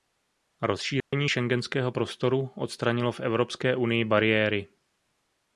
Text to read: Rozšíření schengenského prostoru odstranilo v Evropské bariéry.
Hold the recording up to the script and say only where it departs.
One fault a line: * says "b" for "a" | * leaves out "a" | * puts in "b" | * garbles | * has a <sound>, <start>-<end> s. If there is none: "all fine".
* has a dropout, 1.0-1.1 s
* puts in "unii"